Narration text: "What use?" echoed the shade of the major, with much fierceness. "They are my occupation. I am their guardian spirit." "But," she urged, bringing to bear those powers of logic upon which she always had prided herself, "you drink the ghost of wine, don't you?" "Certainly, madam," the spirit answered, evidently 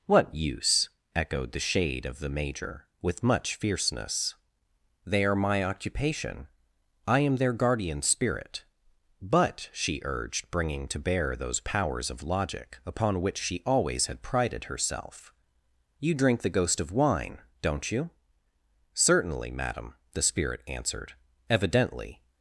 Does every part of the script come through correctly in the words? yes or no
yes